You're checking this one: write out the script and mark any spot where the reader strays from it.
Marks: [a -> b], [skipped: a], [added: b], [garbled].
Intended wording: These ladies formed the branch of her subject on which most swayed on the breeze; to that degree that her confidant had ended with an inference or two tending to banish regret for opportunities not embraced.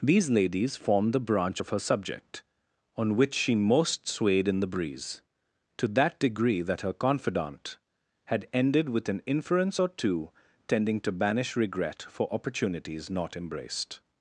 These ladies formed the branch of her subject on which [added: she] most swayed [on -> in] the breeze; to that degree that her confidant had ended with an inference or two tending to banish regret for opportunities not embraced.